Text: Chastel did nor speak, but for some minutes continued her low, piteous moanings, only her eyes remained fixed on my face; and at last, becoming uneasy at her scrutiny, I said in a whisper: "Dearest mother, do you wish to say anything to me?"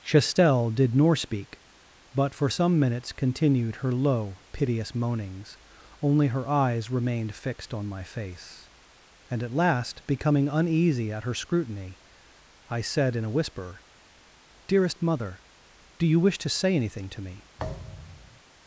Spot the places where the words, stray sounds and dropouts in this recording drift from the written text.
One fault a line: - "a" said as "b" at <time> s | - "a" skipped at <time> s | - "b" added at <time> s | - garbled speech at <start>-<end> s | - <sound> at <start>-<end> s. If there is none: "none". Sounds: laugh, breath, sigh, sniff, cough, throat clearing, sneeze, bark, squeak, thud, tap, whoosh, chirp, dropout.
- thud at 17.6-18.4 s